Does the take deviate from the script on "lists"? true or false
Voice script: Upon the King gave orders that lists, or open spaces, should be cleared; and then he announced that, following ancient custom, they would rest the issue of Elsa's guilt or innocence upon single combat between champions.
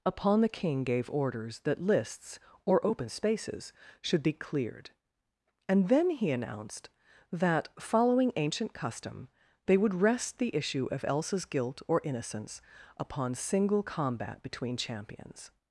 false